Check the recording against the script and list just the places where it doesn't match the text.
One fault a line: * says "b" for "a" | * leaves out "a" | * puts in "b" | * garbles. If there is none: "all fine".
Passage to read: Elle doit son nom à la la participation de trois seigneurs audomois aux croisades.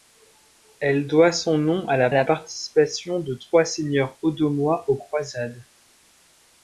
all fine